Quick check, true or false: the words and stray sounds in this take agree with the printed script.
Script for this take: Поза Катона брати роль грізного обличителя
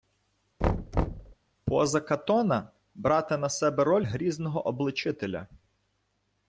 false